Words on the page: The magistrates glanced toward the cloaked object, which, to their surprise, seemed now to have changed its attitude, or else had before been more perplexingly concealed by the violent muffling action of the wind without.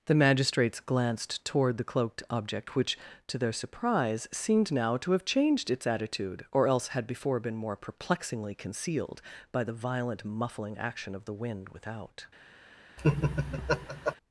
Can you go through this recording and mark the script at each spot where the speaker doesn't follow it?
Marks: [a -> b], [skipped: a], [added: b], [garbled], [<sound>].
The magistrates glanced toward the cloaked object, which, to their surprise, seemed now to have changed its attitude, or else had before been more perplexingly concealed by the violent muffling action of the wind without. [laugh]